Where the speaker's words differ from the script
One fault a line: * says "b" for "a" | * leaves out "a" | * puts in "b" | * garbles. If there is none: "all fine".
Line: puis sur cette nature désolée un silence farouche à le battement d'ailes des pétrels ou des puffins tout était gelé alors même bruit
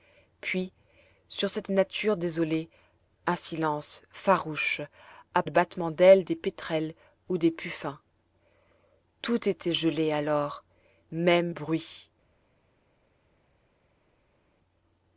all fine